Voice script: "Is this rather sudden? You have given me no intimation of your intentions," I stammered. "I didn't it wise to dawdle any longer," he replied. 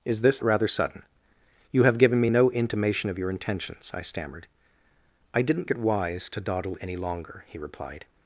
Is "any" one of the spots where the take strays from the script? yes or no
no